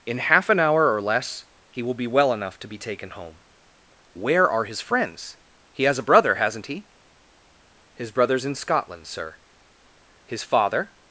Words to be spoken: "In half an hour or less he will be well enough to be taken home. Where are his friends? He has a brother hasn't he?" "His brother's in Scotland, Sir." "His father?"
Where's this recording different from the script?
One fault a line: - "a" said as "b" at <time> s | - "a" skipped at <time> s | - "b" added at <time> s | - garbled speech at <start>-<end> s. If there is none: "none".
none